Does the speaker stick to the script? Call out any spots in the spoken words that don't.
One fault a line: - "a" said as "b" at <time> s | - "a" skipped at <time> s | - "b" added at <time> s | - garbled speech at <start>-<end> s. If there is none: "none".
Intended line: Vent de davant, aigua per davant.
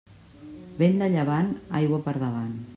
- "davant" said as "llevant" at 1.2 s